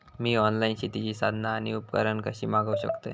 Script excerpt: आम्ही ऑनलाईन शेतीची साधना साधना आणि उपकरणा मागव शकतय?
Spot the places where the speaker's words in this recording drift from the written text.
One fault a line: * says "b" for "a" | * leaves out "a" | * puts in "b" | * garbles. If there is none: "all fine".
* says "मी" for "आम्ही"
* leaves out "साधना"
* puts in "कशी"